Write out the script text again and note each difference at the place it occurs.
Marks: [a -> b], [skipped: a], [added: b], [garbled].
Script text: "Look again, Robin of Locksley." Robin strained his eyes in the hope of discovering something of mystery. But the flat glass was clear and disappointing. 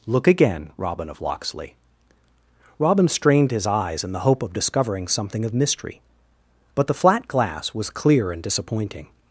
"Look again, Robin of Locksley." Robin strained his eyes in the hope of discovering something of mystery. But the flat glass was clear and disappointing.